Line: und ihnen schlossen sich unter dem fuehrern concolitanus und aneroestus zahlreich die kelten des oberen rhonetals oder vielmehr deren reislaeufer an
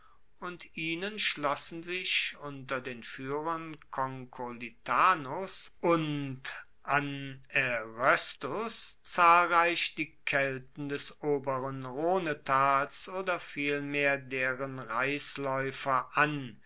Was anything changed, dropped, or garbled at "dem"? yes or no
yes